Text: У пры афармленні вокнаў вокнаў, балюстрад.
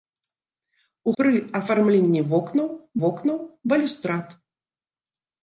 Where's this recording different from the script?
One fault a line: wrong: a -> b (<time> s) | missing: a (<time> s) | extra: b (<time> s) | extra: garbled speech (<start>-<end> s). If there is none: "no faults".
no faults